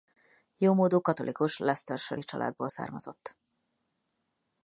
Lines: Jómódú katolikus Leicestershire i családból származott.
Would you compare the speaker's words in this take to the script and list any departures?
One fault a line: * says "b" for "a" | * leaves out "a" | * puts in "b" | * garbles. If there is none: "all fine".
all fine